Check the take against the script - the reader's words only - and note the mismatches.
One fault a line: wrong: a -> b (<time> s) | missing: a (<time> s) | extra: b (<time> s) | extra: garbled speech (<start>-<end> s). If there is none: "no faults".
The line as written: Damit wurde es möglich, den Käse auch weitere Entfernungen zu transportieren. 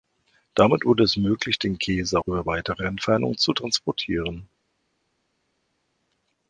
extra: über (2.3 s)